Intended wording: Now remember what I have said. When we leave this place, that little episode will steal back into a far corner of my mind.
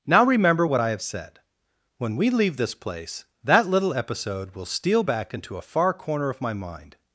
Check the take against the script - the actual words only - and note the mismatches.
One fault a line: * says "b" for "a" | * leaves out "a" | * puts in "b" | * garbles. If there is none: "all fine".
all fine